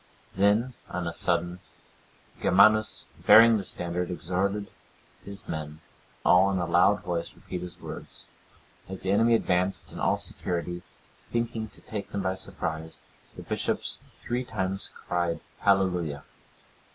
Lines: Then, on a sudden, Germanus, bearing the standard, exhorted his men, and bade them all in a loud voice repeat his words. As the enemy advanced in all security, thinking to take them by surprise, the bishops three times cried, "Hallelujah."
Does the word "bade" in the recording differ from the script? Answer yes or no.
yes